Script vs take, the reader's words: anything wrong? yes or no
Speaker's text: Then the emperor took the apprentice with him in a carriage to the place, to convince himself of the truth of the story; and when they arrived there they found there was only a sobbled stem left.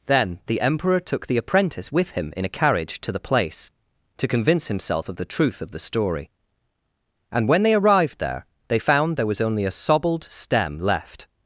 no